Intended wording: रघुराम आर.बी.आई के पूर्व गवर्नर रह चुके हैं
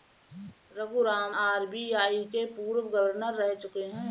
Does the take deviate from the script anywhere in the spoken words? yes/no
no